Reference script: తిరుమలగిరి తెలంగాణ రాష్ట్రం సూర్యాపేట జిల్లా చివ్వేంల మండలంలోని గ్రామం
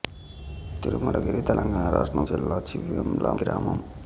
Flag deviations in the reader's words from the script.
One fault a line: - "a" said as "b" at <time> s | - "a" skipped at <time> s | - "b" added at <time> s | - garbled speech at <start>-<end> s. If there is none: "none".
- "సూర్యాపేట" skipped at 2.2 s
- "మండలంలోని" skipped at 3.3 s